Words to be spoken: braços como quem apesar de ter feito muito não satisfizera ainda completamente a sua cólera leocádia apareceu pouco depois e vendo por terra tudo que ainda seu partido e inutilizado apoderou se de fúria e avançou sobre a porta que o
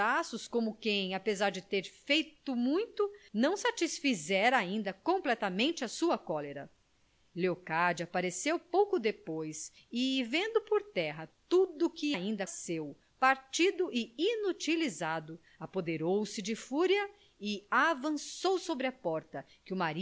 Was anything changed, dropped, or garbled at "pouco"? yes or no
no